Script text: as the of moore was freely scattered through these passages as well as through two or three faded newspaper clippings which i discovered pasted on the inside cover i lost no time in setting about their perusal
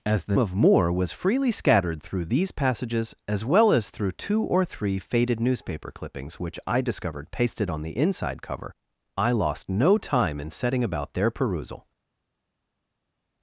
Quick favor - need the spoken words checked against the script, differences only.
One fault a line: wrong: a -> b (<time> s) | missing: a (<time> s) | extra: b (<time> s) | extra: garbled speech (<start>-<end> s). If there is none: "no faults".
no faults